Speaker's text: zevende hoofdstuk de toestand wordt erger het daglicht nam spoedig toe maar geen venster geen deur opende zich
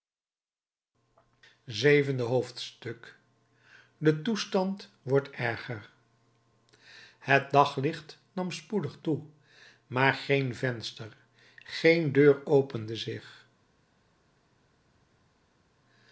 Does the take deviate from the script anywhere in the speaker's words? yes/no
no